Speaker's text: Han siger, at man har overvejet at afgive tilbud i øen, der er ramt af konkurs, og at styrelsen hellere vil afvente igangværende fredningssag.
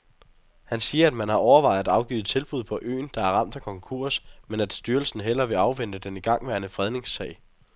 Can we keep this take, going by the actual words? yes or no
no